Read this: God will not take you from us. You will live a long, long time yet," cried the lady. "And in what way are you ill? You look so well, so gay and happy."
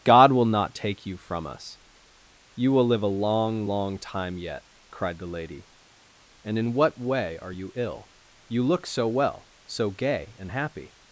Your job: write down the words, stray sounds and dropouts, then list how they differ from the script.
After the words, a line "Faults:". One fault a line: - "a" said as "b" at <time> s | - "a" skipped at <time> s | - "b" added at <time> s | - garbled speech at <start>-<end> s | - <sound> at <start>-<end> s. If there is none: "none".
God will not take you from us. You will live a long, long time yet," cried the lady. "And in what way are you ill? You look so well, so gay and happy."
Faults:
none